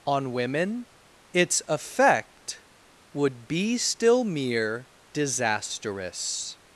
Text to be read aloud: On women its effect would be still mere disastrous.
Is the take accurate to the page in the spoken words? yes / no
yes